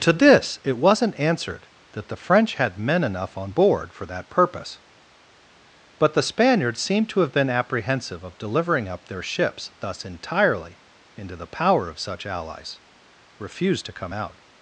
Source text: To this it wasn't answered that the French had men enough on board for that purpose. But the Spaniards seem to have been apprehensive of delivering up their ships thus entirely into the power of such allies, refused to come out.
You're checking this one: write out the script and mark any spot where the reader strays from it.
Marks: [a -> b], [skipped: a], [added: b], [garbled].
To this it wasn't answered that the French had men enough on board for that purpose. But the Spaniards seem to have been apprehensive of delivering up their ships thus entirely into the power of such allies, refused to come out.